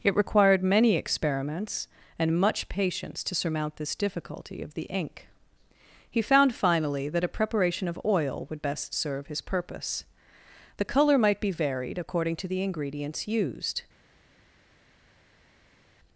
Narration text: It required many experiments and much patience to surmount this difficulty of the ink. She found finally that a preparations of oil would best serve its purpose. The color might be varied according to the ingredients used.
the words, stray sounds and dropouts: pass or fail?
fail